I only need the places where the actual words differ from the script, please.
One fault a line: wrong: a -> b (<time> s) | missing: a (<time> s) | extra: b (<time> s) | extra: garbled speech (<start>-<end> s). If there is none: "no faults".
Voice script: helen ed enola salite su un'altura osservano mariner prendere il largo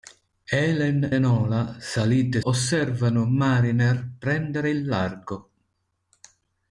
missing: ed (1.1 s)
missing: su un'altura (2.4 s)